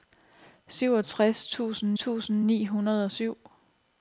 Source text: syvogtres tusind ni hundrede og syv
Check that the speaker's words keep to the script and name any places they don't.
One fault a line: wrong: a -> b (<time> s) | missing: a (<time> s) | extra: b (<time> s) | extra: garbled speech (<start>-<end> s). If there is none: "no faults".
extra: tusind (1.9 s)